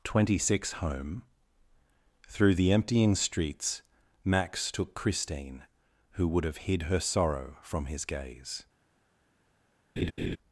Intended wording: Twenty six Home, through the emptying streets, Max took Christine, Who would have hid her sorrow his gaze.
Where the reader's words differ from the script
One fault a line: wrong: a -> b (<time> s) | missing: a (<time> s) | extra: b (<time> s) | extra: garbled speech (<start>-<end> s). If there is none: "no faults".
extra: from (7.6 s)